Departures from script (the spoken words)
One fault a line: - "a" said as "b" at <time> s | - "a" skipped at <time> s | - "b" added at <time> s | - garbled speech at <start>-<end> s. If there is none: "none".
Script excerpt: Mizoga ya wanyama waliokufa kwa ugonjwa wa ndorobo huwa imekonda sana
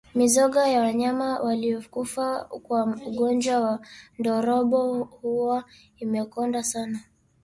none